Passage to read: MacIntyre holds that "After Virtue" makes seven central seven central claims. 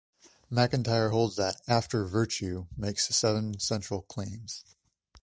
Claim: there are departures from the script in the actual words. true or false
true